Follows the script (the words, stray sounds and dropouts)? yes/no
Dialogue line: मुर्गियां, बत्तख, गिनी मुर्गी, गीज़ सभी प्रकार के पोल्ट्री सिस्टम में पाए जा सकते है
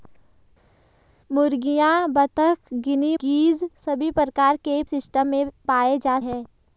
no